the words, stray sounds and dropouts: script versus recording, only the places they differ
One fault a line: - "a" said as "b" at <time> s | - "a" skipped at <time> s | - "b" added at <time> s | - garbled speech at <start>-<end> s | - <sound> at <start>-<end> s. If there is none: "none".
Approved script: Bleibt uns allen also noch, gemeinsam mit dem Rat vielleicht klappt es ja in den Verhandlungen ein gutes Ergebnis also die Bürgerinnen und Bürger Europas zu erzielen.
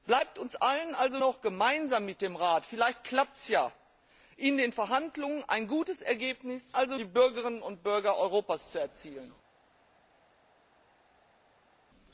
none